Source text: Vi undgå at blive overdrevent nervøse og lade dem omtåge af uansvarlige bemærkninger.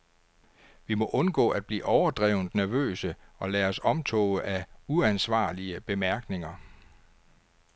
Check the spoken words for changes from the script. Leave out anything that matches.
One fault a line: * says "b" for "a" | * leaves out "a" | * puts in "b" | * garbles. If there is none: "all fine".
* puts in "må"
* says "os" for "dem"